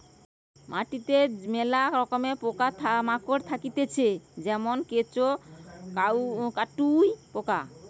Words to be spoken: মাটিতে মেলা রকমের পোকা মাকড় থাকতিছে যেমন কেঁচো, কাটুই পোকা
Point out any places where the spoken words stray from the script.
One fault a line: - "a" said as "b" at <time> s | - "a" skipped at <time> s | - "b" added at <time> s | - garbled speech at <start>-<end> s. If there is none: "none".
none